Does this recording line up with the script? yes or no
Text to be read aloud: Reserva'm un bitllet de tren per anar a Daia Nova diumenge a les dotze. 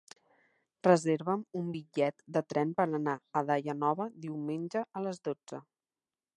yes